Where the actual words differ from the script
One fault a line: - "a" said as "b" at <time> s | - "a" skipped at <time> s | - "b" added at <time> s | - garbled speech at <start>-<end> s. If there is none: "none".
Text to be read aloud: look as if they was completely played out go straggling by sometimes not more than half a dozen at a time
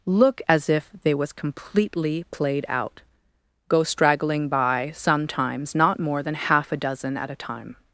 none